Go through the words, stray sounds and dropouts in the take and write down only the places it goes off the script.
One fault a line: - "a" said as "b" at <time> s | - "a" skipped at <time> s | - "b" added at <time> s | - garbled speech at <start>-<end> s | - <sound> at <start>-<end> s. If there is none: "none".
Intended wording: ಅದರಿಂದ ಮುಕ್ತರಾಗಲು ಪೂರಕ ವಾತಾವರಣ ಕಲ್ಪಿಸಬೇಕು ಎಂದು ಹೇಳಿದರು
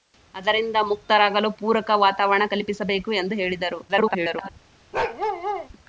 - garbled speech at 3.9-4.5 s
- bark at 4.9-5.7 s